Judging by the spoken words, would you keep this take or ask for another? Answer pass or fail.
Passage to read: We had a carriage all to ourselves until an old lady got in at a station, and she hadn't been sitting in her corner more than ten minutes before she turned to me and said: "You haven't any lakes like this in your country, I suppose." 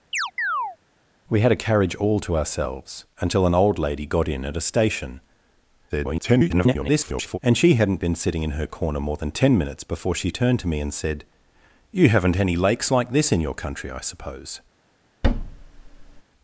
fail